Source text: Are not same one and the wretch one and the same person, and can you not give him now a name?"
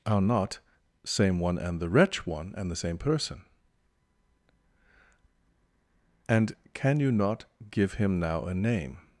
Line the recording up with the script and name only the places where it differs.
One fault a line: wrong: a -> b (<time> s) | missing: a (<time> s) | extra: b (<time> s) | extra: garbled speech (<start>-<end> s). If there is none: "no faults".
no faults